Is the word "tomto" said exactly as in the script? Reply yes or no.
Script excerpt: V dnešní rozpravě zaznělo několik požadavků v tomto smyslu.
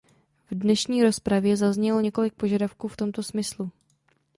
yes